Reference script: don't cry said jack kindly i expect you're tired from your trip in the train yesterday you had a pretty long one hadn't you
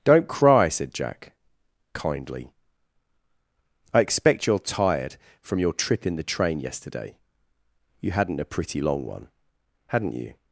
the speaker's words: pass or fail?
fail